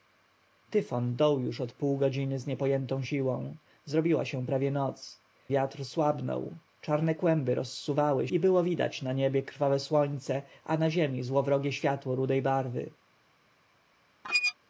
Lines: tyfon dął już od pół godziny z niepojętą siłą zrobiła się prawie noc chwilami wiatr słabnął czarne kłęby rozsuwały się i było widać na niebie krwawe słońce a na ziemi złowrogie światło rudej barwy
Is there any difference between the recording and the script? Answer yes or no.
yes